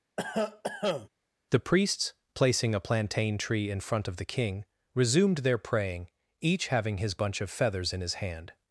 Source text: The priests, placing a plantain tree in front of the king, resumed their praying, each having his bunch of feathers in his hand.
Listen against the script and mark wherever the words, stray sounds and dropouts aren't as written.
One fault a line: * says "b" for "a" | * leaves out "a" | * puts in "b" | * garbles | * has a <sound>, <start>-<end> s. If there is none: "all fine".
* has a cough, 0.2-1.1 s